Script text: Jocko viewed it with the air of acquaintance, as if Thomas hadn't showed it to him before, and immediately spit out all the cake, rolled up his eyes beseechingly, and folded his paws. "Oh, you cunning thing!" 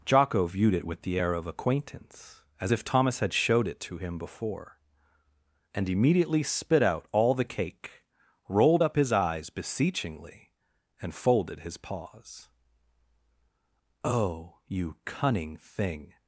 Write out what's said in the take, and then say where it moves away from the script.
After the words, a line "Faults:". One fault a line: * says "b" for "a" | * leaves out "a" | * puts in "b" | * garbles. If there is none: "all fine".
Jocko viewed it with the air of acquaintance, as if Thomas had showed it to him before, and immediately spit out all the cake, rolled up his eyes beseechingly, and folded his paws. "Oh, you cunning thing!"
Faults:
* says "had" for "hadn't"